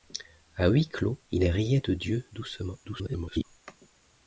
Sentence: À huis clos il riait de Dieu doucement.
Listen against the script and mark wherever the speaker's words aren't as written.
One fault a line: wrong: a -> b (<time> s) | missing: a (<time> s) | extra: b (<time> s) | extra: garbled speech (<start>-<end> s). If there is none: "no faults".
extra: garbled speech (2.8-3.4 s)